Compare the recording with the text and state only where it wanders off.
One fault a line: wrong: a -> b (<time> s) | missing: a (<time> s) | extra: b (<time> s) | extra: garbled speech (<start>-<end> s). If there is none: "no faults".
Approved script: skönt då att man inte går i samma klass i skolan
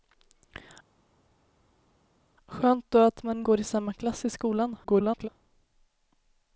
missing: inte (3.4 s)
extra: garbled speech (4.8-5.3 s)